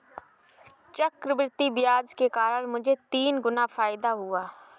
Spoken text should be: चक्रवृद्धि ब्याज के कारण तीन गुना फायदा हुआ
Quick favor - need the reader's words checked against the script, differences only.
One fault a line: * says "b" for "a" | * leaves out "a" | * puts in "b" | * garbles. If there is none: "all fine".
* puts in "मुझे"